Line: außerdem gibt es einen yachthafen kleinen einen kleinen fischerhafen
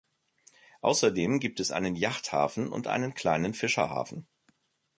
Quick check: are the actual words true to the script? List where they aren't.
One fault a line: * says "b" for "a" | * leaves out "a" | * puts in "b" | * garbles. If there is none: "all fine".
* says "und" for "kleinen"